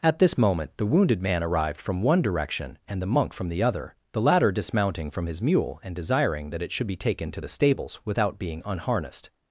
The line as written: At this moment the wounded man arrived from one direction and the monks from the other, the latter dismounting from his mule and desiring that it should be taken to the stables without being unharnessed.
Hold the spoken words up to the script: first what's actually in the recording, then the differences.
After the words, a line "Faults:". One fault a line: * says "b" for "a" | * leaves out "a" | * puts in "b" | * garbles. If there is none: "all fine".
At this moment the wounded man arrived from one direction and the monk from the other, the latter dismounting from his mule and desiring that it should be taken to the stables without being unharnessed.
Faults:
* says "monk" for "monks"